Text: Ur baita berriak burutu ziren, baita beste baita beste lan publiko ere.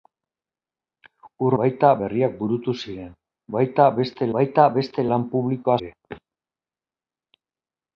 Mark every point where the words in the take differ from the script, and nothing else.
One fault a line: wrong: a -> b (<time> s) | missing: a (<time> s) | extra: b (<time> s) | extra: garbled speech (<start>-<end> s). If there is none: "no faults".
no faults